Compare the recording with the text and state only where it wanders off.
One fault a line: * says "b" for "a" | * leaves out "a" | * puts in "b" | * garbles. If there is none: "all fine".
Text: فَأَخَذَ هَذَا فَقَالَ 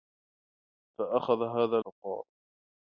all fine